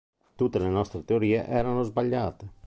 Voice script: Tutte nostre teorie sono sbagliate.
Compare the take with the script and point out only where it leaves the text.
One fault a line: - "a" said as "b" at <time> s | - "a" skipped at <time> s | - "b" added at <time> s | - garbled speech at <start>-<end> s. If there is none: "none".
- "le" added at 0.6 s
- "sono" said as "erano" at 1.4 s